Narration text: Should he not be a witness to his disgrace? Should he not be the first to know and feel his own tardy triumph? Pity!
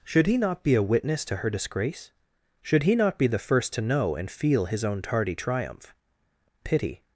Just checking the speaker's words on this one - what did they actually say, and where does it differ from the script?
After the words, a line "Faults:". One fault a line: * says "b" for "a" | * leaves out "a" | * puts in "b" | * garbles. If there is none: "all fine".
Should he not be a witness to her disgrace? Should he not be the first to know and feel his own tardy triumph? Pity!
Faults:
* says "her" for "his"